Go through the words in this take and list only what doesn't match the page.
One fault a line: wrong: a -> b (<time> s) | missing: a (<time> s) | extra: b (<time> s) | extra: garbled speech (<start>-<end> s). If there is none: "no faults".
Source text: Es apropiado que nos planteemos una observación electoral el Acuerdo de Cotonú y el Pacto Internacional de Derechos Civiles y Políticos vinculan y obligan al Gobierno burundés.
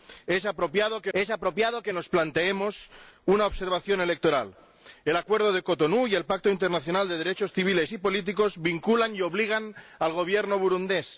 extra: es apropiado que (1.1 s)